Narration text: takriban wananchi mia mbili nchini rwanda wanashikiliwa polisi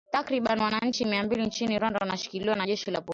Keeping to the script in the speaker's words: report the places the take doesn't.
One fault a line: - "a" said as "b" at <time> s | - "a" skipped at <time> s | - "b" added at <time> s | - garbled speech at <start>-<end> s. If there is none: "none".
- "na jeshi la" added at 2.6 s